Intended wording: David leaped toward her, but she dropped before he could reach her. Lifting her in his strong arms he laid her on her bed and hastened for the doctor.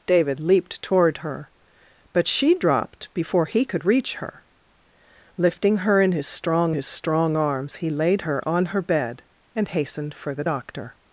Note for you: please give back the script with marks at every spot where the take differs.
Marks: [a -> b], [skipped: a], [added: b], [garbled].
David leaped toward her, but she dropped before he could reach her. Lifting her in his strong [added: his strong] arms he laid her on her bed and hastened for the doctor.